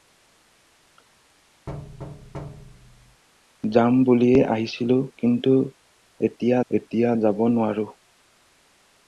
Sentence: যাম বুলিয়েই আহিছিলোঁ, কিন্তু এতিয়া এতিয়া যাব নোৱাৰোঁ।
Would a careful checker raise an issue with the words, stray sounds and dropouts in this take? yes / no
yes